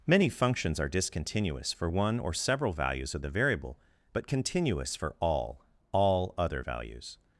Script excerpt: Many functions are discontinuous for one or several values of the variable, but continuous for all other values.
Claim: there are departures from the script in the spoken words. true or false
true